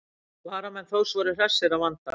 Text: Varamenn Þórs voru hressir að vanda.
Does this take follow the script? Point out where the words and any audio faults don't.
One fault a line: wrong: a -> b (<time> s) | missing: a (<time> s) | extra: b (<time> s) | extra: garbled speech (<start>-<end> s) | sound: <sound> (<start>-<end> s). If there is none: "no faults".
no faults